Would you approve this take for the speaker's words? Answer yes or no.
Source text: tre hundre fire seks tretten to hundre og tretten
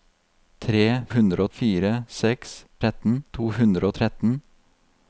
yes